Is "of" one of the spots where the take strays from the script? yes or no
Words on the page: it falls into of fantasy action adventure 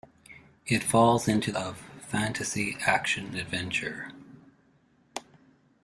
no